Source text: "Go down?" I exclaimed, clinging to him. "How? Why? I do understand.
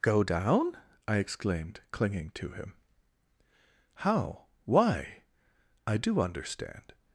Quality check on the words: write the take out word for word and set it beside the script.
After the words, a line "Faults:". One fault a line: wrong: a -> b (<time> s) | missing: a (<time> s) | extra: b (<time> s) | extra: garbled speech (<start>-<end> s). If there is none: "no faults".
"Go down?" I exclaimed, clinging to him. "How? Why? I do understand.
Faults:
no faults